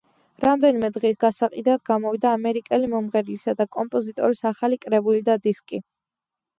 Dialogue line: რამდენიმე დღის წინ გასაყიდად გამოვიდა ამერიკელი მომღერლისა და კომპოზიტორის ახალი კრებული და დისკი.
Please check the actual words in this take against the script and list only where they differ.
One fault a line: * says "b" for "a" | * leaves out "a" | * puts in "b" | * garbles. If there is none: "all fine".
* leaves out "წინ"